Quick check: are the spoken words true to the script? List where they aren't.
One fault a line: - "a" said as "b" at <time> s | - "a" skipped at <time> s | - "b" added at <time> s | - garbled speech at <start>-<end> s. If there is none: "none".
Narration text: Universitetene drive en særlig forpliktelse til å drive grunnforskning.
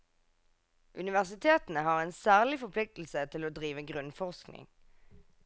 - "drive" said as "har" at 1.9 s